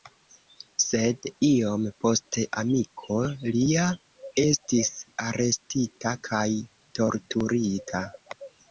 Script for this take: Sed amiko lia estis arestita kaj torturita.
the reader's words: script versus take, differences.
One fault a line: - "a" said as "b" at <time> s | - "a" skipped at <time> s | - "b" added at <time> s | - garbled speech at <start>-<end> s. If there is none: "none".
- "iom poste" added at 1.5 s